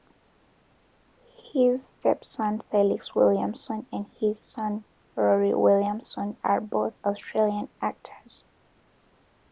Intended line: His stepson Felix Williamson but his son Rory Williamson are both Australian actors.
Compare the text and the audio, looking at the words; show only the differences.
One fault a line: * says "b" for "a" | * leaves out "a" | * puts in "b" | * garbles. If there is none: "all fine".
* says "and" for "but"